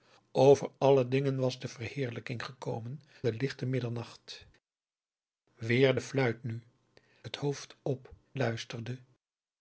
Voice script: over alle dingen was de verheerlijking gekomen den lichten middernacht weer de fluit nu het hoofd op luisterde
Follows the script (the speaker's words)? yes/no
yes